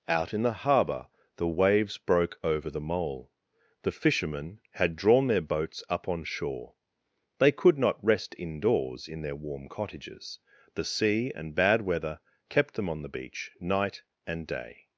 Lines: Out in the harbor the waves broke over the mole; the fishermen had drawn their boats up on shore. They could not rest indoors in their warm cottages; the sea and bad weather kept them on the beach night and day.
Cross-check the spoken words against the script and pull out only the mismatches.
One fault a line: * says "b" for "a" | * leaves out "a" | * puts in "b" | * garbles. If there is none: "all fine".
all fine